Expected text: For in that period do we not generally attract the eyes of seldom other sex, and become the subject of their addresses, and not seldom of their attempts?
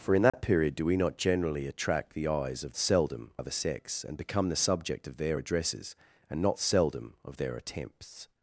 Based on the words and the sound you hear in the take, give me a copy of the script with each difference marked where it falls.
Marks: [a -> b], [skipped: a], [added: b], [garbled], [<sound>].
For in that [dropout] period do we not generally attract the eyes of seldom other sex, and become the subject of their addresses, and not seldom of their attempts?